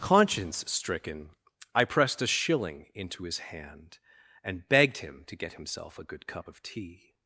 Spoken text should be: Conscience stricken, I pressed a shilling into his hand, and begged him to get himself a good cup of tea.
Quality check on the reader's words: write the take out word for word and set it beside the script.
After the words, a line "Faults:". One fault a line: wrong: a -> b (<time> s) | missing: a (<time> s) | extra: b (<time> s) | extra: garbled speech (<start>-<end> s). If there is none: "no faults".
Conscience stricken, I pressed a shilling into his hand, and begged him to get himself a good cup of tea.
Faults:
no faults